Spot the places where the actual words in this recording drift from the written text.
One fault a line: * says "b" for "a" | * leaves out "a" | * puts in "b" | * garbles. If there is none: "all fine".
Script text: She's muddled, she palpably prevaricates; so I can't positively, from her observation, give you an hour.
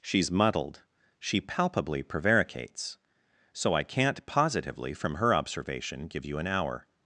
all fine